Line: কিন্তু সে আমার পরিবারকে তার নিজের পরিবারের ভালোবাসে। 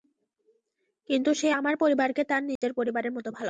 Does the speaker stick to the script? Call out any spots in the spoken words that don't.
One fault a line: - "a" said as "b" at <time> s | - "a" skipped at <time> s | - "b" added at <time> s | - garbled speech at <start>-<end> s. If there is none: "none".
- "মতো" added at 3.1 s